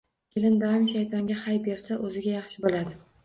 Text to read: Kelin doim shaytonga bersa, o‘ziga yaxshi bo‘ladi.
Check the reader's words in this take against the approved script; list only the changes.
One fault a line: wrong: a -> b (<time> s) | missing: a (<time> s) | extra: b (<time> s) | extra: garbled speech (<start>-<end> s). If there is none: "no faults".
extra: hay (1.4 s)